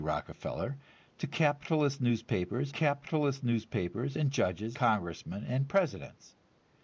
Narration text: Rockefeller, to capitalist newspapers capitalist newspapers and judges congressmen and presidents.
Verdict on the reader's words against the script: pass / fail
pass